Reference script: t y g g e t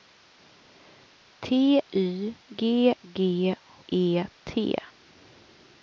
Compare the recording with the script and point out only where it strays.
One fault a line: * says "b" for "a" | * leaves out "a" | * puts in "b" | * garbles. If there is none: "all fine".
all fine